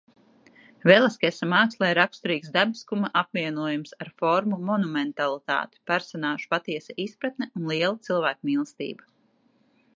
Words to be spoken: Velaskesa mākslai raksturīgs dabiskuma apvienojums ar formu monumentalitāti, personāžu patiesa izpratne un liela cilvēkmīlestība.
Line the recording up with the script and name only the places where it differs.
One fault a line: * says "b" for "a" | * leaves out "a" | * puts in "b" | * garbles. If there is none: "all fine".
all fine